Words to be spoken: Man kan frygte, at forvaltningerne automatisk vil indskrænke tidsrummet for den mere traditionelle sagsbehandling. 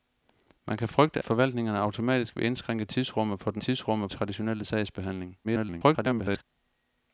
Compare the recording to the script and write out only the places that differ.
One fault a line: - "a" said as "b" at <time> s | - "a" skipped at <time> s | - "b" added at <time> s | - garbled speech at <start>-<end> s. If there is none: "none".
- "at" skipped at 1.2 s
- "mere" said as "tidsrummet" at 3.6 s
- garbled speech at 5.4-6.4 s